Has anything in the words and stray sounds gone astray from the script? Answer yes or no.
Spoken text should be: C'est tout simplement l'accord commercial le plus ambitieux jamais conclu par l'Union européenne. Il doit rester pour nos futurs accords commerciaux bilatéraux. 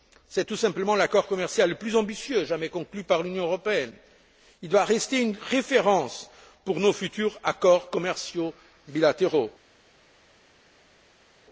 yes